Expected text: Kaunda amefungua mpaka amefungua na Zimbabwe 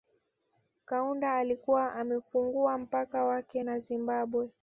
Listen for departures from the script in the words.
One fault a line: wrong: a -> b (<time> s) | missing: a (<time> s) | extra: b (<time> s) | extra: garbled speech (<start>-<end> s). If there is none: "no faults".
extra: alikuwa (1.4 s)
wrong: amefungua -> wake (3.2 s)